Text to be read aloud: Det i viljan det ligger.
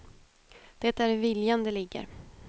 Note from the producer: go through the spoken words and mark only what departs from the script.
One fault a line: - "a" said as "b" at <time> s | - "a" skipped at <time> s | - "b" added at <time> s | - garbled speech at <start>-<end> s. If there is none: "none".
- "är" added at 1.0 s